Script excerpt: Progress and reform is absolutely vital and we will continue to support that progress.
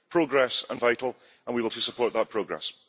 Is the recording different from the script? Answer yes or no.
yes